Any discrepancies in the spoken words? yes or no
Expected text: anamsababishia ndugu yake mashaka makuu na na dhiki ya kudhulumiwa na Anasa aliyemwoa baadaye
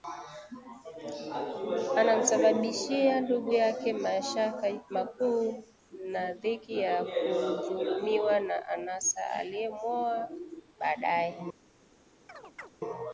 yes